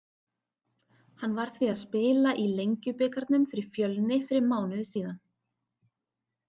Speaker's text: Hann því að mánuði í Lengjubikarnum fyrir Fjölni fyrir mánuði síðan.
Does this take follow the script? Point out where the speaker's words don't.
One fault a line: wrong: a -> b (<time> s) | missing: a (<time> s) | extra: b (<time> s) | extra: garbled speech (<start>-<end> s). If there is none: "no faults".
extra: var (1.4 s)
wrong: mánuði -> spila (1.8 s)